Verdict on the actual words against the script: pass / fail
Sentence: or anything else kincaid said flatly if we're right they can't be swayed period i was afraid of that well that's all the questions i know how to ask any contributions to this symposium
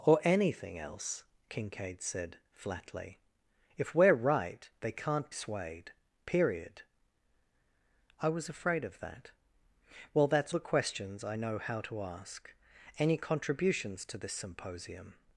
fail